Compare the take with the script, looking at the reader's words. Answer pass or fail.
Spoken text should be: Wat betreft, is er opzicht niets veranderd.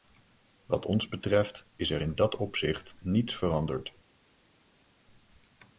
fail